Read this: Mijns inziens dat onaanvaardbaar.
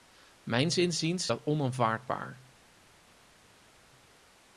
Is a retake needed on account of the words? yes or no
no